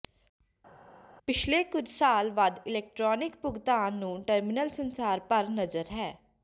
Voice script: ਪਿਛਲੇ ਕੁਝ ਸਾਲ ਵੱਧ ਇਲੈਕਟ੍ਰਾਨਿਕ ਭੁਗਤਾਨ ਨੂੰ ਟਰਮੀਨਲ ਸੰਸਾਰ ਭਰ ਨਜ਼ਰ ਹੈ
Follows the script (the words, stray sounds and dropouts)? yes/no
yes